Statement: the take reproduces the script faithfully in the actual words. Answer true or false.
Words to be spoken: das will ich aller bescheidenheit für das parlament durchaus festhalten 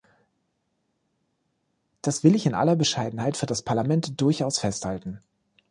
false